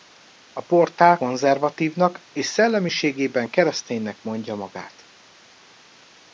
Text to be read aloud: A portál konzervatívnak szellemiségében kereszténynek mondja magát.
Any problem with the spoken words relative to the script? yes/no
yes